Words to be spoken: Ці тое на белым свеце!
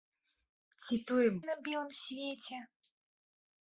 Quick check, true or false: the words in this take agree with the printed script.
true